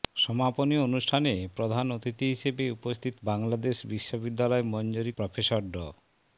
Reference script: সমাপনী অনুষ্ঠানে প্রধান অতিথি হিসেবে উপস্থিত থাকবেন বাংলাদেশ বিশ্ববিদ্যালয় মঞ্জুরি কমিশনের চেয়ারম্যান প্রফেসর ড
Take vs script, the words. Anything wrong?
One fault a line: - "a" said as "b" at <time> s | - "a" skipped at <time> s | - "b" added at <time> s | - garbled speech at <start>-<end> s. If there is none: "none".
- "থাকবেন" skipped at 3.1 s
- "কমিশনের চেয়ারম্যান" skipped at 5.1 s